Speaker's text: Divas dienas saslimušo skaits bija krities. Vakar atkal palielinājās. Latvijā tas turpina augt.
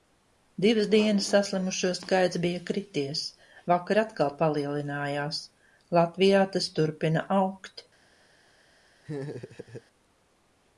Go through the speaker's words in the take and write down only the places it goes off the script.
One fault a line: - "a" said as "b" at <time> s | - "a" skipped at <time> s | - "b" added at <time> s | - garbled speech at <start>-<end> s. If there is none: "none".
none